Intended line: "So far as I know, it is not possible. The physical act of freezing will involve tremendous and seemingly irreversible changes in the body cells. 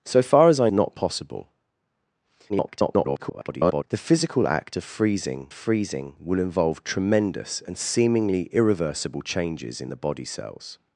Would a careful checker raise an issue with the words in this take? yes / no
yes